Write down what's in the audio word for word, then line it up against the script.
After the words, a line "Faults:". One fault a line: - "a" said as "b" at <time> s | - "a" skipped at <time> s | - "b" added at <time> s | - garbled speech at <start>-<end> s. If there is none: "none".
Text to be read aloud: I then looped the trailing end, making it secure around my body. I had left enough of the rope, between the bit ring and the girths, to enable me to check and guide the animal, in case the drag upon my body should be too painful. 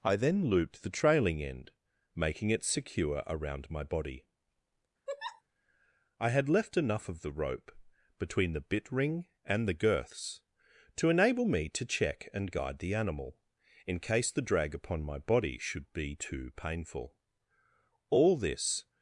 I then looped the trailing end, making it secure around my body. I had left enough of the rope, between the bit ring and the girths, to enable me to check and guide the animal, in case the drag upon my body should be too painful. All this
Faults:
- "All this" added at 18.1 s